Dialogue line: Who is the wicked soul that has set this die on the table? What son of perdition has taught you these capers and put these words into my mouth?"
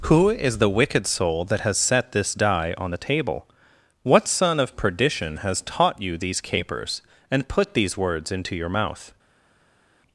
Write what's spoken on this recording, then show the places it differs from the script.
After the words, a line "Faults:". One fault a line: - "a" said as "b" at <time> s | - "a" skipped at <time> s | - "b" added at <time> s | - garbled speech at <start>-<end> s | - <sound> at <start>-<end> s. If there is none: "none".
Who is the wicked soul that has set this die on the table? What son of perdition has taught you these capers and put these words into your mouth?"
Faults:
- "my" said as "your" at 8.5 s